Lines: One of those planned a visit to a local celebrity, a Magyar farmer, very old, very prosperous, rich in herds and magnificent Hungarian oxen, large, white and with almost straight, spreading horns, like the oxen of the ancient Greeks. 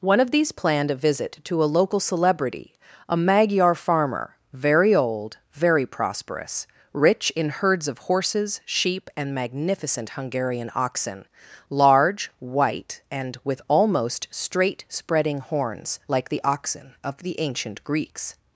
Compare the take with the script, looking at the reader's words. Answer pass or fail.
fail